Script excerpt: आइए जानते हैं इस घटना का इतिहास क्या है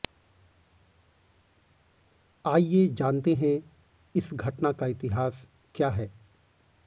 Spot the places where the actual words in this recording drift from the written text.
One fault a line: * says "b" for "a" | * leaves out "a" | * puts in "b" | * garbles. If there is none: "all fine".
all fine